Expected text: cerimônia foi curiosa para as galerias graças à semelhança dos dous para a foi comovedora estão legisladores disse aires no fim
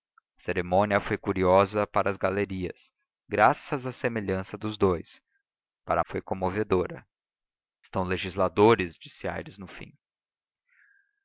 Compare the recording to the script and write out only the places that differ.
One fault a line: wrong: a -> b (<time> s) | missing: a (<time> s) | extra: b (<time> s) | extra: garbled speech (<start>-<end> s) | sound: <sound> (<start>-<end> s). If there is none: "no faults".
no faults